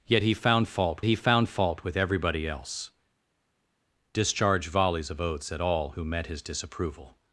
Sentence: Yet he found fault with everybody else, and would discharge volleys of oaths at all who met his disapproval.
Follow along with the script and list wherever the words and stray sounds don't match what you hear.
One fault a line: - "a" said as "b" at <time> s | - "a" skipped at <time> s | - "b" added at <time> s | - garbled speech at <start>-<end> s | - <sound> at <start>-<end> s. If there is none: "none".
- "he found fault" added at 1.0 s
- "and would" skipped at 2.9 s